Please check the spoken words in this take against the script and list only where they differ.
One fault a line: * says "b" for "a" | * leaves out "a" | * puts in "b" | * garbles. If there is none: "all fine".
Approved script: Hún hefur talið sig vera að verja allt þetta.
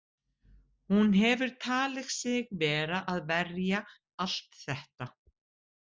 all fine